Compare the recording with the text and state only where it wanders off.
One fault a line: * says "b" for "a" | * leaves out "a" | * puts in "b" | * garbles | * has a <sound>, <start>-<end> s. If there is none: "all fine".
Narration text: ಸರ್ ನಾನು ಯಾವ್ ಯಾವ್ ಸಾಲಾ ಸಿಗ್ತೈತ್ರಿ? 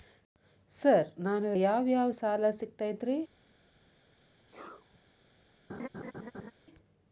* has a sneeze, 4.5-5.0 s
* has a laugh, 5.7-6.5 s